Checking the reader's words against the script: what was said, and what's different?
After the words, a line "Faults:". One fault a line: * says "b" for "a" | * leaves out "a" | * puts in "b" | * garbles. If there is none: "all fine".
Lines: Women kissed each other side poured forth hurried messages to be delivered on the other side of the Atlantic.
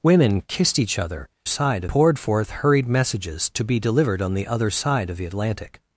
Women kissed each other side poured forth hurried messages to be delivered on the other side of the Atlantic.
Faults:
all fine